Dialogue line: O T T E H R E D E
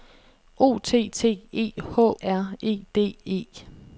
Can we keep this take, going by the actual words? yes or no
yes